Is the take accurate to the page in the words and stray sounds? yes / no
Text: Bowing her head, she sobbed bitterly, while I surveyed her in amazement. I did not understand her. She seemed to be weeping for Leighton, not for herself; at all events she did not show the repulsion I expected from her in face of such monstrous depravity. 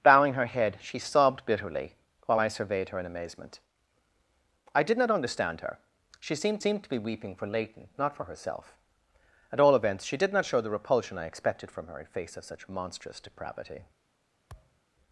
no